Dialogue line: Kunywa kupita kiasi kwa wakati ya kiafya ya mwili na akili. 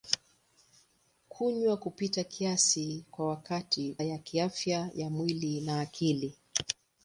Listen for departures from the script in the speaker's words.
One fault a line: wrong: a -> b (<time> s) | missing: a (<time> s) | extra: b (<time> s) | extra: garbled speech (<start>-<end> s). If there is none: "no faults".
no faults